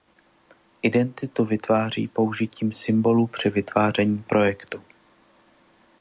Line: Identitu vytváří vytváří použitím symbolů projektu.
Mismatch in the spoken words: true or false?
true